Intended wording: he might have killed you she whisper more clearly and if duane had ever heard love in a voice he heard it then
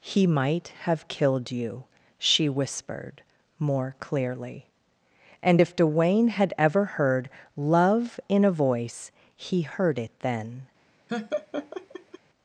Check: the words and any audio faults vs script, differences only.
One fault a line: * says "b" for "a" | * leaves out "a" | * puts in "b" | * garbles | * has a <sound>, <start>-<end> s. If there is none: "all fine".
* says "whispered" for "whisper"
* has a laugh, 11.1-12.2 s